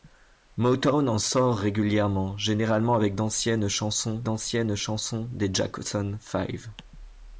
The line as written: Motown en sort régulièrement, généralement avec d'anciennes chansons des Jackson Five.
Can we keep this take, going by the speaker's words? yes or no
no